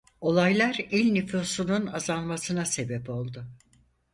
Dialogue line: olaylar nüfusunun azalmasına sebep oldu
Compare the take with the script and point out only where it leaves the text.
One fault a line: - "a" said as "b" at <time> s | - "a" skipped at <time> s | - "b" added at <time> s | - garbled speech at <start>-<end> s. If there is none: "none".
- "il" added at 0.9 s